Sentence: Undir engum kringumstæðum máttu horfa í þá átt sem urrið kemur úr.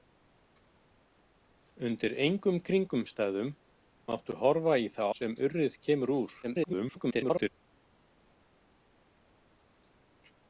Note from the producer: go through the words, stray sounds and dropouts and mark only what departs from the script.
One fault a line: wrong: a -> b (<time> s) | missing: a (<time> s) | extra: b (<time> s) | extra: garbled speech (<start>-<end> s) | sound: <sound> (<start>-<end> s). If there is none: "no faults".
missing: átt (5.0 s)
extra: garbled speech (6.4-7.5 s)